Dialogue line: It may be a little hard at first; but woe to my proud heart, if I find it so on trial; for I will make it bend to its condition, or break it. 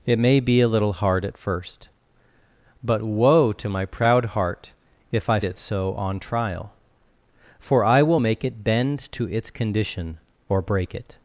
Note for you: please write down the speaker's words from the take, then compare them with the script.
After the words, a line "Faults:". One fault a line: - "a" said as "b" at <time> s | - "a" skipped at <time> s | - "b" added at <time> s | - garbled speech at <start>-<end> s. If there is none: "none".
It may be a little hard at first; but woe to my proud heart, if I it so on trial; for I will make it bend to its condition, or break it.
Faults:
- "find" skipped at 5.4 s